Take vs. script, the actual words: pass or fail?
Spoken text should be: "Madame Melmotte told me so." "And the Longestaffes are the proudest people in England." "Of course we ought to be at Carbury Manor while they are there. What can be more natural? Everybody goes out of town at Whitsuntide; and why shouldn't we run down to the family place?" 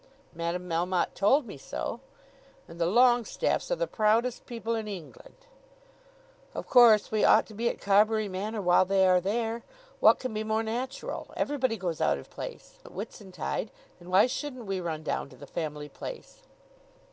fail